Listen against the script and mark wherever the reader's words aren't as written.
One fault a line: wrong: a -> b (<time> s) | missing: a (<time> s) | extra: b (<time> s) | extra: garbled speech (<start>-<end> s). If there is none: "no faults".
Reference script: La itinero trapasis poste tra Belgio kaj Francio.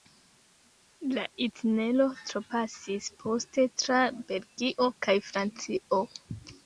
no faults